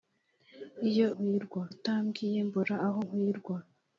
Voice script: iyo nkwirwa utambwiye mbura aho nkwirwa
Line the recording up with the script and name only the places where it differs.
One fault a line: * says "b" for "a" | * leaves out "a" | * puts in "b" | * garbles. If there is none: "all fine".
all fine